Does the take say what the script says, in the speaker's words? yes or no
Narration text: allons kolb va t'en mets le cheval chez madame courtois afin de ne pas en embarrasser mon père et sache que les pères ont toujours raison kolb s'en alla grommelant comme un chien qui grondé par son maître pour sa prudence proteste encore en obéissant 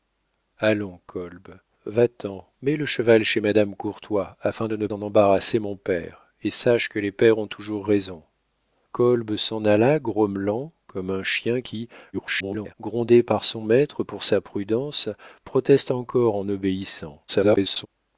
no